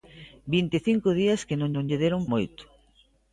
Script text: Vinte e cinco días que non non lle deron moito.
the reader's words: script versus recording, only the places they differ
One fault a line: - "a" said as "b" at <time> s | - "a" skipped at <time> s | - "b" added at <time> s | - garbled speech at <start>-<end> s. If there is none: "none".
none